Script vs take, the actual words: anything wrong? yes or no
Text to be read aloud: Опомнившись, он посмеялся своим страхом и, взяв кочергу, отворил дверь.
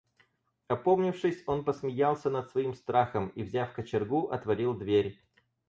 yes